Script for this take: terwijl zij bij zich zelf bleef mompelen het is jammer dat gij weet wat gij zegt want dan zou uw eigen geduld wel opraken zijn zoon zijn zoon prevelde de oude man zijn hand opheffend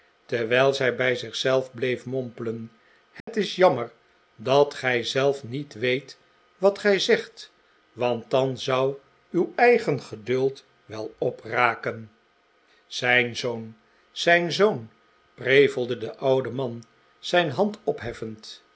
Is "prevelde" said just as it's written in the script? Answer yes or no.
yes